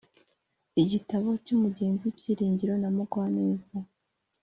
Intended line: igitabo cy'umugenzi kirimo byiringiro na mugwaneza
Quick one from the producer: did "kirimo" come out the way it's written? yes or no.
no